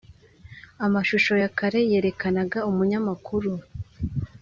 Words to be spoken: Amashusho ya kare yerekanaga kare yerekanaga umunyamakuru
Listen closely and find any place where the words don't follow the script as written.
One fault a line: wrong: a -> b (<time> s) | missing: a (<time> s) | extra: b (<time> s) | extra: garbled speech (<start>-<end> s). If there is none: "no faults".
missing: kare yerekanaga (2.6 s)